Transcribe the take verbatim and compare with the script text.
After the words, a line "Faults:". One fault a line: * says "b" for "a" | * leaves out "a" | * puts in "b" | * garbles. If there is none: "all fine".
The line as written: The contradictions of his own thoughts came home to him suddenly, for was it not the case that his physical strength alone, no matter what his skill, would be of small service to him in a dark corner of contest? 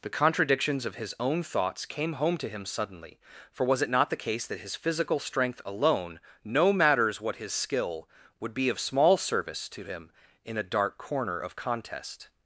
The contradictions of his own thoughts came home to him suddenly, for was it not the case that his physical strength alone, no matters what his skill, would be of small service to him in a dark corner of contest?
Faults:
* says "matters" for "matter"